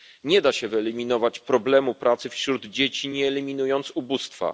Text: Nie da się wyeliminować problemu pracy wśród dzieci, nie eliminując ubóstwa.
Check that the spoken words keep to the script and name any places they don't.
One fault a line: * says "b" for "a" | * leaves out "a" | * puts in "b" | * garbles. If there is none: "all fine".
all fine